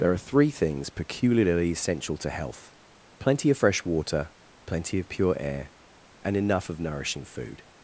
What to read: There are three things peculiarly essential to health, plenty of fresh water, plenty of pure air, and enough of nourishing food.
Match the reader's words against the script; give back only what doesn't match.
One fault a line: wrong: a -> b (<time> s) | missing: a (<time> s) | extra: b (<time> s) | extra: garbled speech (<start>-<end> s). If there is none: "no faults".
no faults